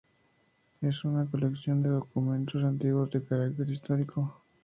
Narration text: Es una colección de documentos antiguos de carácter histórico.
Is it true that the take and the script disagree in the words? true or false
false